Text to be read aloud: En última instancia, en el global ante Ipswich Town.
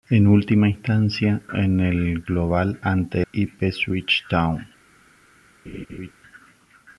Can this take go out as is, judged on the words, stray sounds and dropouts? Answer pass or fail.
fail